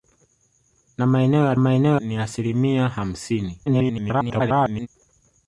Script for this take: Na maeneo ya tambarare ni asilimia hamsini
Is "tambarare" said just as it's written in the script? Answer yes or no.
no